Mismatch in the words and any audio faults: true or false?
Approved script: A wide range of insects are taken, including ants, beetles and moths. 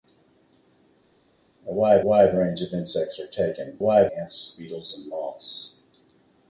true